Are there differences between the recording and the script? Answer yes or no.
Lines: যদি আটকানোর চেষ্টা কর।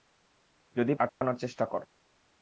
no